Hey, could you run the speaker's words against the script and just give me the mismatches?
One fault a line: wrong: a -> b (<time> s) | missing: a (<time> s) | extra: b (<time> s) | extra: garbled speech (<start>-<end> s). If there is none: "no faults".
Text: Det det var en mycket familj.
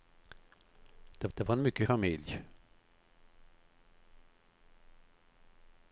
no faults